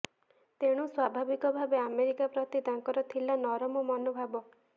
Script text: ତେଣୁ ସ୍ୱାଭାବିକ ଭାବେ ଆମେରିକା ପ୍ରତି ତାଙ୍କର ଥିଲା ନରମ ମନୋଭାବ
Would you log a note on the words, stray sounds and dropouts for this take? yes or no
no